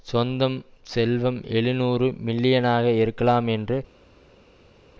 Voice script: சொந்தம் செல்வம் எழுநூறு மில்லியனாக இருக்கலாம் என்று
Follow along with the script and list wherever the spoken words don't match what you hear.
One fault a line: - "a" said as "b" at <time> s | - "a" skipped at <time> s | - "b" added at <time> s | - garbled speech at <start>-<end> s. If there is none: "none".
none